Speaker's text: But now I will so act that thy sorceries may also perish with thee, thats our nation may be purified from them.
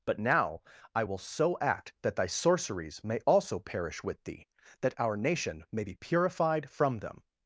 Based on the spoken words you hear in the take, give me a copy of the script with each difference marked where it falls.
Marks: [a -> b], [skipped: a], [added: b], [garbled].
But now I will so act that thy sorceries may also perish with thee, [thats -> that] our nation may be purified from them.